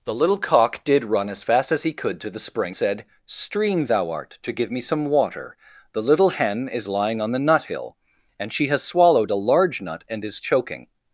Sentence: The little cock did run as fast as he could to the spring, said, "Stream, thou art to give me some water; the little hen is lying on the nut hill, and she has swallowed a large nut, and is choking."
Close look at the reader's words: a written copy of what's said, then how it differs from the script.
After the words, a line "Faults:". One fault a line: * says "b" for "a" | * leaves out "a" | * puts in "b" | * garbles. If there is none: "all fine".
The little cock did run as fast as he could to the spring, said, "Stream, thou art to give me some water; the little hen is lying on the nut hill, and she has swallowed a large nut, and is choking."
Faults:
all fine